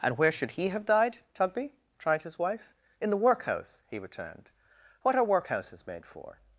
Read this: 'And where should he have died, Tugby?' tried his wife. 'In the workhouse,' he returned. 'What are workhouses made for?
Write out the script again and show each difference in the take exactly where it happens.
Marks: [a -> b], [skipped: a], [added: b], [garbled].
'And where should he have died, Tugby?' tried his wife. 'In the workhouse,' he returned. 'What are workhouses made for?